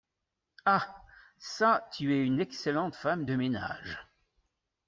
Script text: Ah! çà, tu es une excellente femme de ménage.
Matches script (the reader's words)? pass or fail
pass